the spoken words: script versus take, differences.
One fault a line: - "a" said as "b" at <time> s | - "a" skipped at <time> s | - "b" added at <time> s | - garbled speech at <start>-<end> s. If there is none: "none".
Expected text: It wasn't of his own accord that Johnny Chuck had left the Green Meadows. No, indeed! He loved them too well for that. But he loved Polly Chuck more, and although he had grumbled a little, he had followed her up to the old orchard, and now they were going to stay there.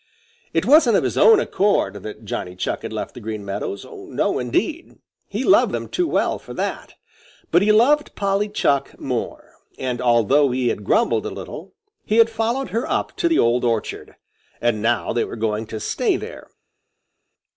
none